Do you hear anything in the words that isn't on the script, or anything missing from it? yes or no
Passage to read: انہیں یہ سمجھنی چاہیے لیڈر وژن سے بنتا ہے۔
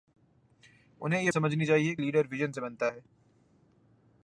no